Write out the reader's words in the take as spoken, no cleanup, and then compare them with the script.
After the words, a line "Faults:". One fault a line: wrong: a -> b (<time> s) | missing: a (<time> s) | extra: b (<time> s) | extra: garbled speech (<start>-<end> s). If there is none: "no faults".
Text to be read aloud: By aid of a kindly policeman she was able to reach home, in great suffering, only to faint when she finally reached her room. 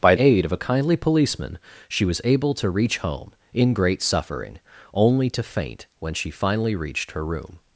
By aid of a kindly policeman she was able to reach home, in great suffering, only to faint when she finally reached her room.
Faults:
no faults